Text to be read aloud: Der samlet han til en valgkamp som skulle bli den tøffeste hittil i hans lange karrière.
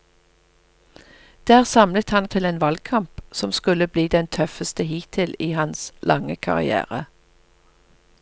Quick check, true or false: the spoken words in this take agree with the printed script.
true